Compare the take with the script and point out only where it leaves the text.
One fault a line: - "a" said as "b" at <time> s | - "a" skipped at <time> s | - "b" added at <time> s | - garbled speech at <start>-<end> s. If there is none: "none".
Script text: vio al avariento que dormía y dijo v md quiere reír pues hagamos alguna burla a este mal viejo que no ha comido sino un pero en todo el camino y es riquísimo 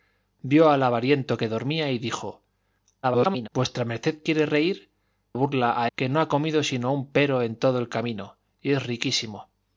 - garbled speech at 3.0-3.5 s
- "pues hagamos alguna" skipped at 4.9 s
- "este mal viejo" skipped at 5.9 s